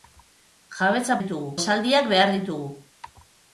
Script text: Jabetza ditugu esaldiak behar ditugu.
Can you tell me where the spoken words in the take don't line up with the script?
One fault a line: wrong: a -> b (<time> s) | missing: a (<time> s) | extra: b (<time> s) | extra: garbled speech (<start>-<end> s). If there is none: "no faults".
no faults